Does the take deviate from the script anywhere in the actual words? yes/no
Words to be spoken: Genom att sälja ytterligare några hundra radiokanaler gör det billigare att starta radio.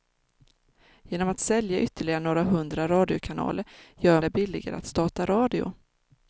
no